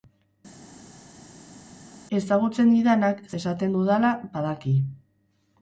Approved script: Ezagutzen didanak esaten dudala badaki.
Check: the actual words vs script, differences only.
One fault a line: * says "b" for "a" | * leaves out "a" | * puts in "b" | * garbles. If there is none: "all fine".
all fine